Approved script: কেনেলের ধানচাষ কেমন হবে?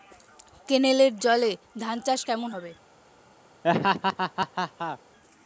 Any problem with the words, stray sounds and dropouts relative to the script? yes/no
yes